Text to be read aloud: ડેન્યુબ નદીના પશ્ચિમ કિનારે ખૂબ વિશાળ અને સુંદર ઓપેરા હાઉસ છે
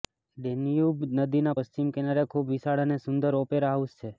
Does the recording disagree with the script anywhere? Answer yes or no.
no